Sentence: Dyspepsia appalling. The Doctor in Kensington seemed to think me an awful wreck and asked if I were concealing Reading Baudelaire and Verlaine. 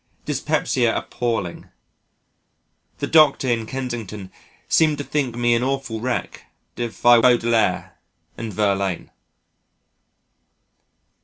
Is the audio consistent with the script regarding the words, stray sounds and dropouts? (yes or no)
no